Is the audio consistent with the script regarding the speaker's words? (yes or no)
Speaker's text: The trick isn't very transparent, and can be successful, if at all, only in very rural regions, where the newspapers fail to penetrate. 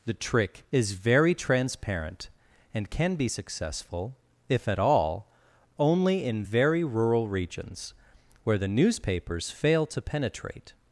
no